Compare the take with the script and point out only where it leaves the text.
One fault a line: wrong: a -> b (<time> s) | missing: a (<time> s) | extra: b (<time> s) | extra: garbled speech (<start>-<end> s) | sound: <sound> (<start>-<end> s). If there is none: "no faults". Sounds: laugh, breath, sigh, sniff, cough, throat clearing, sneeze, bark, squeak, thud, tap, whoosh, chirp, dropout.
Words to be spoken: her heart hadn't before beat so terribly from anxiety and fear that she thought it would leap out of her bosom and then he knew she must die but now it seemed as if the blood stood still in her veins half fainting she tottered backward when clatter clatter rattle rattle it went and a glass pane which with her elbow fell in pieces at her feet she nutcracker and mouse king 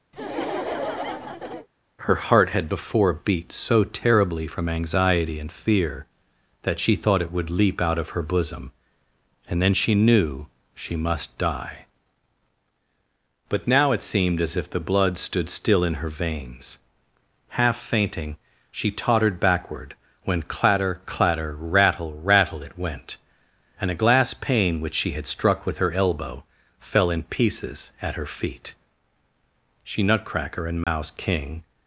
sound: laugh (0.1-1.7 s)
wrong: hadn't -> had (2.5 s)
wrong: he -> she (9.7 s)
extra: she had struck (24.9 s)
sound: dropout (30.8-30.9 s)